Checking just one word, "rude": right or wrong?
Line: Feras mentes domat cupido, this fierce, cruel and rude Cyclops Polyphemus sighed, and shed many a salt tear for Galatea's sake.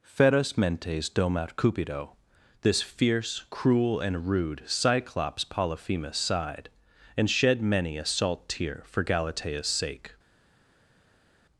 right